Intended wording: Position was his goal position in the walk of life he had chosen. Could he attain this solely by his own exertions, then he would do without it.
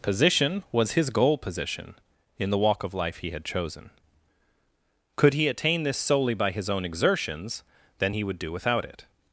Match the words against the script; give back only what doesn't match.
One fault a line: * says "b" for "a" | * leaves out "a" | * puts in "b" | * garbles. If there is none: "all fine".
all fine